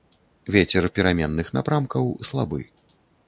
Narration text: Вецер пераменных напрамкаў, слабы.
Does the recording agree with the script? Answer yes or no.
yes